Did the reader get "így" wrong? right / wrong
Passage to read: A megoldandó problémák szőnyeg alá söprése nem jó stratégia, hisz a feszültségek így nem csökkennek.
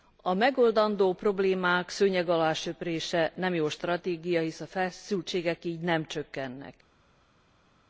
right